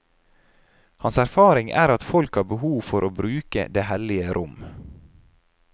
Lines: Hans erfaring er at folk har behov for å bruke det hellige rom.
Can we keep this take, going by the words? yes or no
yes